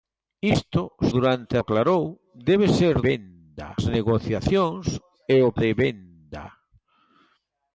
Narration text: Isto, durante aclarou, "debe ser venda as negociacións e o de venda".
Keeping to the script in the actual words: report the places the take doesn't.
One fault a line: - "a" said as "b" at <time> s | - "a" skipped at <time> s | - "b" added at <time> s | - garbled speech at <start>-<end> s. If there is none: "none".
none